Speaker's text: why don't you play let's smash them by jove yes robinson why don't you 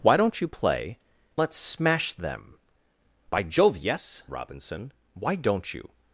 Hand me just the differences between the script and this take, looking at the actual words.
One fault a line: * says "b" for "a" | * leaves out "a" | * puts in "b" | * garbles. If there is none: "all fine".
all fine